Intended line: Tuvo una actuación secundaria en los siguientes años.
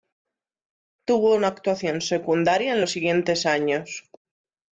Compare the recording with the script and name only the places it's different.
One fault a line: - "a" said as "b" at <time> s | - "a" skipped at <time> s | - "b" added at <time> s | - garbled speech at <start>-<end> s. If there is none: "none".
none